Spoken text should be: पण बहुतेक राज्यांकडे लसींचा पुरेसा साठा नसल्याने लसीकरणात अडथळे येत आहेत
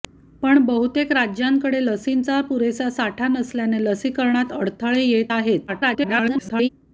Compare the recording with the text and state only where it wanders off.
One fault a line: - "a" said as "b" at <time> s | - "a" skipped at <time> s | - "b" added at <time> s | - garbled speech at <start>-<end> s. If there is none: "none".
- garbled speech at 5.7-6.7 s